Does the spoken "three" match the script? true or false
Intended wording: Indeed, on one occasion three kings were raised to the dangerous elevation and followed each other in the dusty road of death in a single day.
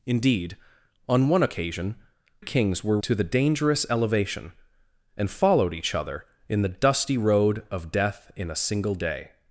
false